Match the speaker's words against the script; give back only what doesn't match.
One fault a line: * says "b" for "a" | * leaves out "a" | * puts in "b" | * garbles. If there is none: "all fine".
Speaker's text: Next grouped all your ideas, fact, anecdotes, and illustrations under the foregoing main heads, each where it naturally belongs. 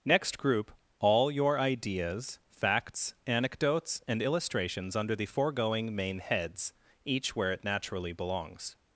* says "group" for "grouped"
* says "facts" for "fact"